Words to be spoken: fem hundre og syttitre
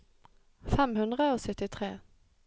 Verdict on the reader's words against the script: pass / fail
pass